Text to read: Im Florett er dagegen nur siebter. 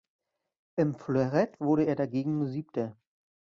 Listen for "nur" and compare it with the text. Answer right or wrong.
right